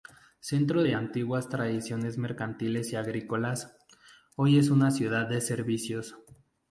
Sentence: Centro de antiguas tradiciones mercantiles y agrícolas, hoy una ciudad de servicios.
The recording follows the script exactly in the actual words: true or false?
false